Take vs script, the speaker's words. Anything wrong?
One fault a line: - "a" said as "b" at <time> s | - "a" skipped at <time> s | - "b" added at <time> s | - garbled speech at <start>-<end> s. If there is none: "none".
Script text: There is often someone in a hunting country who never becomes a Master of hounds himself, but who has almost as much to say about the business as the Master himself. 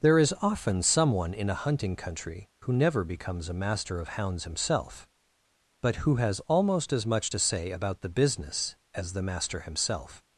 none